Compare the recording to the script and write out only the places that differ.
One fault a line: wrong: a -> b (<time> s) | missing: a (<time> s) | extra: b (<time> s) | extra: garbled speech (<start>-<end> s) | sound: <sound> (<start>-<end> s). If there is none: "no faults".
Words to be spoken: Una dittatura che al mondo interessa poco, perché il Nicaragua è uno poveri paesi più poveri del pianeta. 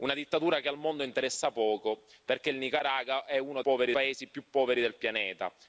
no faults